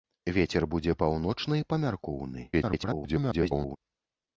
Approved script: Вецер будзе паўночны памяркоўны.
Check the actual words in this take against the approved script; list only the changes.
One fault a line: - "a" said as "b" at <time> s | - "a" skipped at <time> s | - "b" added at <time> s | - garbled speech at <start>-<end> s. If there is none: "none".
- garbled speech at 2.5-3.8 s